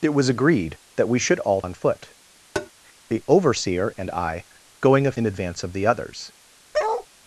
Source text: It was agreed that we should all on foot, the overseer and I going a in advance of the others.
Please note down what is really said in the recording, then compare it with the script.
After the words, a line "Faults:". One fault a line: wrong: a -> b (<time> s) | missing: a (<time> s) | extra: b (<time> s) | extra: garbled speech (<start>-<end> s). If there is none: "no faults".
It was agreed that we should all on foot, the overseer and I going a in advance of the others.
Faults:
no faults